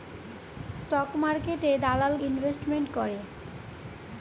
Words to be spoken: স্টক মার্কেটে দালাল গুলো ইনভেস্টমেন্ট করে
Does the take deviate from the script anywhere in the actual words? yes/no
yes